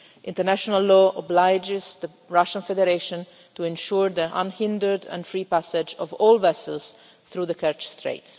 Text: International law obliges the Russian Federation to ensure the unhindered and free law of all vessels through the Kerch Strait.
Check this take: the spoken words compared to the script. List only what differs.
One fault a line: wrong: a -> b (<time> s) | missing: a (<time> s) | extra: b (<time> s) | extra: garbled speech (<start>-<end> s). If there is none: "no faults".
wrong: law -> passage (5.4 s)